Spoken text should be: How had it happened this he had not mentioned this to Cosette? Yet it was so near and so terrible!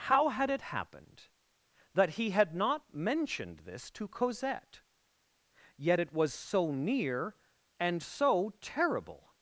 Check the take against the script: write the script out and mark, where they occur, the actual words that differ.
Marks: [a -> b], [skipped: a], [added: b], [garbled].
How had it happened [this -> that] he had not mentioned this to Cosette? Yet it was so near and so terrible!